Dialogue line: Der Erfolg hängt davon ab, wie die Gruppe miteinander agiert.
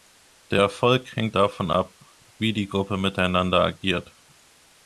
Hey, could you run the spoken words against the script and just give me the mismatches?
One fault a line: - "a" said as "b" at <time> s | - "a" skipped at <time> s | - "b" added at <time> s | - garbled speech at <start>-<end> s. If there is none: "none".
none